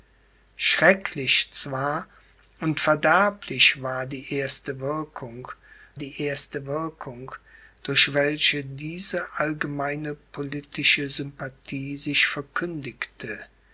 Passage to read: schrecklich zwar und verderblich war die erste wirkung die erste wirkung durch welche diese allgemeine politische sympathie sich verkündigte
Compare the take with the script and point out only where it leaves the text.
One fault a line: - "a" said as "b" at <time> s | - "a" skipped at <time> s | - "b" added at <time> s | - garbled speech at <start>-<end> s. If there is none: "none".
none